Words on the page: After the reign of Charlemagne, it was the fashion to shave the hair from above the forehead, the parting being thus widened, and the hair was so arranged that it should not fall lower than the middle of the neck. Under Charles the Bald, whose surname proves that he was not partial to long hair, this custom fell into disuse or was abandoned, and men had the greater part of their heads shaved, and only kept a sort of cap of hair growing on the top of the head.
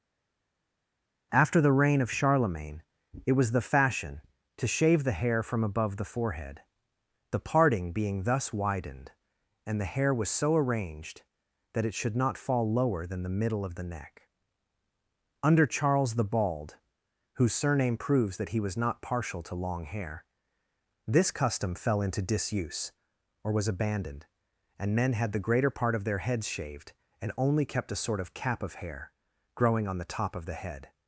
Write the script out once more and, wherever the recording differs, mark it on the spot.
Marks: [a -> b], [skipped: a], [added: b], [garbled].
After the reign of Charlemagne, it was the fashion to shave the hair from above the forehead, the parting being thus widened, and the hair was so arranged that it should not fall lower than the middle of the neck. Under Charles the Bald, whose surname proves that he was not partial to long hair, this custom fell into disuse or was abandoned, and men had the greater part of their heads shaved, and only kept a sort of cap of hair growing on the top of the head.